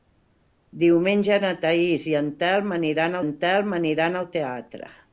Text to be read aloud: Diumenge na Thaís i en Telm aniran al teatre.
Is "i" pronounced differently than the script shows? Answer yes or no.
no